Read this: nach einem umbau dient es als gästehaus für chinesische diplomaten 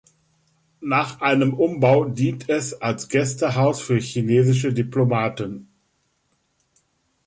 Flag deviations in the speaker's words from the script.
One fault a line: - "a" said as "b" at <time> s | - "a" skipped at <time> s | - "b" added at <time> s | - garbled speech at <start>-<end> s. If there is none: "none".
none